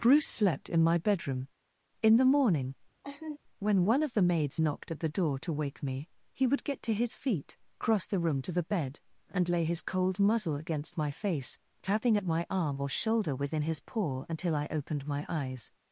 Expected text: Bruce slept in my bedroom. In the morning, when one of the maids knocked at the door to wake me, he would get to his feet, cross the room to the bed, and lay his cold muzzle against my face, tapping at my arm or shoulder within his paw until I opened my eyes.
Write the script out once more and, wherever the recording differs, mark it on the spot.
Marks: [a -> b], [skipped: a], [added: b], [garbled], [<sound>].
Bruce slept in my bedroom. In the morning, [laugh] when one of the maids knocked at the door to wake me, he would get to his feet, cross the room to the bed, and lay his cold muzzle against my face, tapping at my arm or shoulder within his paw until I opened my eyes.